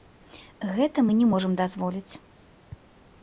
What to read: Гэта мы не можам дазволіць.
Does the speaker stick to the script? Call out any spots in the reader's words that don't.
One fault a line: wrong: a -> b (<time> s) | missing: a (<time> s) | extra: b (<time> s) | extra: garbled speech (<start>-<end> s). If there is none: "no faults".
no faults